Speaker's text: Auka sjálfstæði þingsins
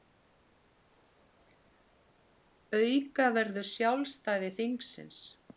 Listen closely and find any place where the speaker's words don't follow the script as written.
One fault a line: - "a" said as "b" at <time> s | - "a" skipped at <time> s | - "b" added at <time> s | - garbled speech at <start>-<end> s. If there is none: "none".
- "verður" added at 3.4 s